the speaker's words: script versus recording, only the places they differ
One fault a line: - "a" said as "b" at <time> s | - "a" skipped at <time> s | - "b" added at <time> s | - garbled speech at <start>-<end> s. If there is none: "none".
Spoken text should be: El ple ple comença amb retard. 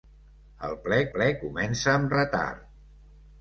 none